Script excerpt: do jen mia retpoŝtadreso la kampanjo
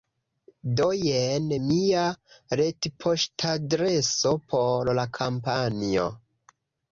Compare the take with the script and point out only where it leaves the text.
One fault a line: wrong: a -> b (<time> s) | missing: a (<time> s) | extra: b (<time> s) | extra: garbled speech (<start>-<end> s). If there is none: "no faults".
extra: por (4.5 s)